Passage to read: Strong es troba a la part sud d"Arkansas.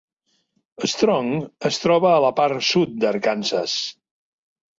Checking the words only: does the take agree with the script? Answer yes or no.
yes